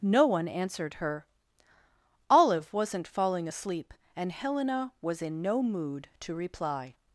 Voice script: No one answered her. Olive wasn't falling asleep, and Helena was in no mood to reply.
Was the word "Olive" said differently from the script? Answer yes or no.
no